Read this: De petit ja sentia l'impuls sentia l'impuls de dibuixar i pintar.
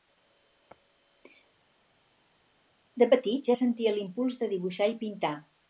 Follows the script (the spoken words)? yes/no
no